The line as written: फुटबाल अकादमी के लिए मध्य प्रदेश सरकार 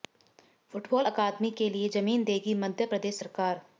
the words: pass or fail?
fail